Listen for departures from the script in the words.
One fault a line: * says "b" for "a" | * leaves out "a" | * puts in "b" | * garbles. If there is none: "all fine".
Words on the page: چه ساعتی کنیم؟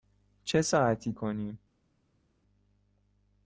all fine